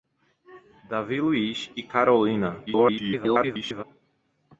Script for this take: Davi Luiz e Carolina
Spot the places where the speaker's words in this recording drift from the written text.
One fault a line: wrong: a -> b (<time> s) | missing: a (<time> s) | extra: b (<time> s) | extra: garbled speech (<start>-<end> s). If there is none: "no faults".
extra: garbled speech (2.7-3.8 s)